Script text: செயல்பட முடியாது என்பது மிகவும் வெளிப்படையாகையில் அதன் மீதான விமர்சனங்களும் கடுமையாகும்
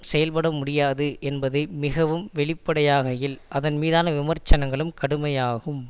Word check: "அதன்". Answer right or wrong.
right